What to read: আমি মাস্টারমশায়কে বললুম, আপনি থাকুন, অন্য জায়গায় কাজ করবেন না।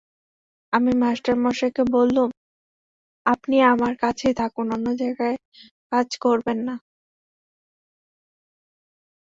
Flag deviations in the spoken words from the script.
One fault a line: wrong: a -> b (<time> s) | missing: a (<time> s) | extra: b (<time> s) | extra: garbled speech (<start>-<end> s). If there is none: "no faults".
extra: আমার কাছেই (3.7 s)